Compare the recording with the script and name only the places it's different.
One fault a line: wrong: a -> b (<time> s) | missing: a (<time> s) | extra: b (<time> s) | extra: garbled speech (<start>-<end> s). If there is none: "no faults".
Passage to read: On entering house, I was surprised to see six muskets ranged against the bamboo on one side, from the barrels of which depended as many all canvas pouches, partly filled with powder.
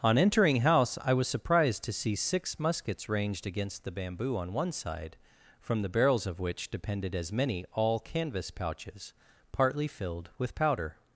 no faults